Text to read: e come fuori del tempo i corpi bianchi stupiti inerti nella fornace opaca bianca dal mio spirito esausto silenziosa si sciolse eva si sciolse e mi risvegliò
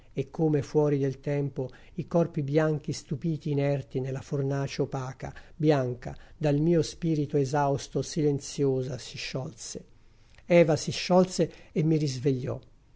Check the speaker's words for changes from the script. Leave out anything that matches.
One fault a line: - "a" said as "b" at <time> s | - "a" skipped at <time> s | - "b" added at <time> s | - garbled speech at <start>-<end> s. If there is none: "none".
none